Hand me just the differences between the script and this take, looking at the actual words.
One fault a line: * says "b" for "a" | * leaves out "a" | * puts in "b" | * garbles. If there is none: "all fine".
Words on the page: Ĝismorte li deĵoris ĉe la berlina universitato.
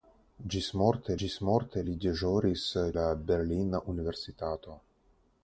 * puts in "ĝismorte"
* leaves out "ĉe"